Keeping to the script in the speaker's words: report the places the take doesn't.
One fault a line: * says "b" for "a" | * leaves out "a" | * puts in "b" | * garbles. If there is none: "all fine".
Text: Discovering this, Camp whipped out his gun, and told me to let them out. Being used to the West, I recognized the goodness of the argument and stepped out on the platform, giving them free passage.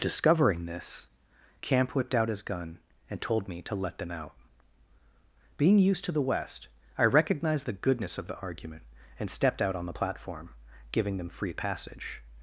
all fine